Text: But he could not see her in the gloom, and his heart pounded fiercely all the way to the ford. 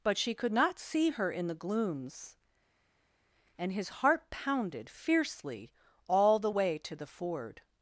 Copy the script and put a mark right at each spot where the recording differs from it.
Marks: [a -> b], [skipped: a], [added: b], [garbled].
But [he -> she] could not see her in the [gloom, -> glooms] and his heart pounded fiercely all the way to the ford.